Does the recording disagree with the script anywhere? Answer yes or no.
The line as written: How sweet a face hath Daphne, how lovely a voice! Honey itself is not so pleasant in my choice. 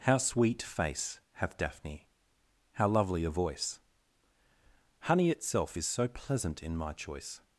yes